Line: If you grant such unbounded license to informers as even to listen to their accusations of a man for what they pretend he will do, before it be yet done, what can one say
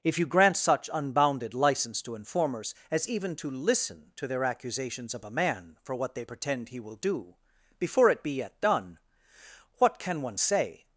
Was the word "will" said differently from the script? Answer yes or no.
no